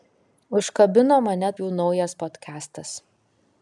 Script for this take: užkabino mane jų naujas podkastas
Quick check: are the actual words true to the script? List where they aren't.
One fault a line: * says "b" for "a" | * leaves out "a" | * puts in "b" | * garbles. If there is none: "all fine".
all fine